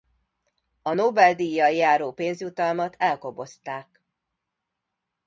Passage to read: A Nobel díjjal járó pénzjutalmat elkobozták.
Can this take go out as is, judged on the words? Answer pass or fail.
pass